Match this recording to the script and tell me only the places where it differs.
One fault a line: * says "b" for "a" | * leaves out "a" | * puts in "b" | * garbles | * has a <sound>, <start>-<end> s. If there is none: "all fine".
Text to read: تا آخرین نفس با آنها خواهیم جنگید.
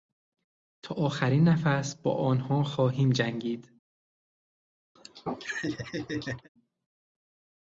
* has a laugh, 5.0-6.5 s